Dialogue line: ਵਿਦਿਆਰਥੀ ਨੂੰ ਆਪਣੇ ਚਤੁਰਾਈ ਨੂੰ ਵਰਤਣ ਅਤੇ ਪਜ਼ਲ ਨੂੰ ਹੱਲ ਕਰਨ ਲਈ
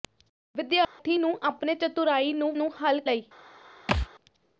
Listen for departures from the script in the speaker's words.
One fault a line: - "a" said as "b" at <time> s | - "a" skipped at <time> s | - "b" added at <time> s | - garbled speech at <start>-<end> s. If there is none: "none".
- "ਵਰਤਣ ਅਤੇ ਪਜ਼ਲ" skipped at 2.5 s
- "ਕਰਨ" skipped at 3.0 s